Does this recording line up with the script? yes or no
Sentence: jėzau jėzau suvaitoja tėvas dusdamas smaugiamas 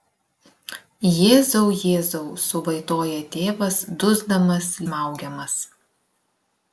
yes